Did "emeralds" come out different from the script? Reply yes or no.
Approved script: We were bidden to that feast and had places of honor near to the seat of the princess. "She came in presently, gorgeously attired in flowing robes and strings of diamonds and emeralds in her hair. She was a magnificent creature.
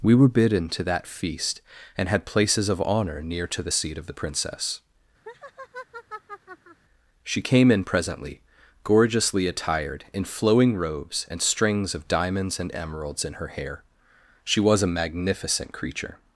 no